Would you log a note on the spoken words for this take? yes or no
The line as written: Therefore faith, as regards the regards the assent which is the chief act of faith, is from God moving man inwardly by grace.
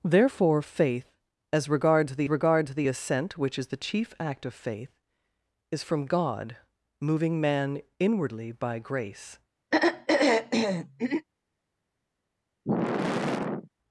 no